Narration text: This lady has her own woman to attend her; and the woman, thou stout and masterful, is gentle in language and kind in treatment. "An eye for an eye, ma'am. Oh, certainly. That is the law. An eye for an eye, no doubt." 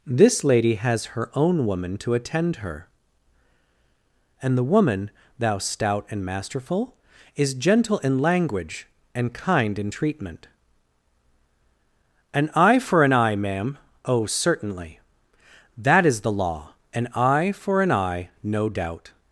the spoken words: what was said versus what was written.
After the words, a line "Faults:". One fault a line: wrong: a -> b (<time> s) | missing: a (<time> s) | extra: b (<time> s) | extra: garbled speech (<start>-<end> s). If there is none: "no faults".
This lady has her own woman to attend her; and the woman, thou stout and masterful, is gentle in language and kind in treatment. "An eye for an eye, ma'am. Oh, certainly. That is the law. An eye for an eye, no doubt."
Faults:
no faults